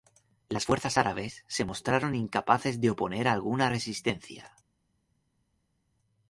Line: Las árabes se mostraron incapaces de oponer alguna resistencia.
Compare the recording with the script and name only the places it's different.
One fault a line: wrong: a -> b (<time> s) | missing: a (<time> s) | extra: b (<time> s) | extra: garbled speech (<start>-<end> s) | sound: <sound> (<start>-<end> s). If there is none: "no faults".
extra: fuerzas (0.6 s)